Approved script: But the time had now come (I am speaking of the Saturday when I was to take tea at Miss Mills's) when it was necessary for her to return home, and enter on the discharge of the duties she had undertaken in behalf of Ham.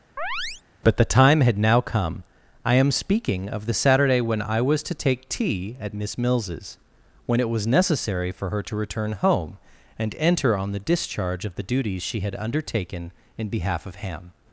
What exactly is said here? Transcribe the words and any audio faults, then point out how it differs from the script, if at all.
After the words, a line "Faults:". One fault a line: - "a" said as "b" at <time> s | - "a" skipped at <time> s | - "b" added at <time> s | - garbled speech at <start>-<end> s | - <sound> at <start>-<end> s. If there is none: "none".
But the time had now come (I am speaking of the Saturday when I was to take tea at Miss Mills's) when it was necessary for her to return home, and enter on the discharge of the duties she had undertaken in behalf of Ham.
Faults:
- chirp at 0.2-0.6 s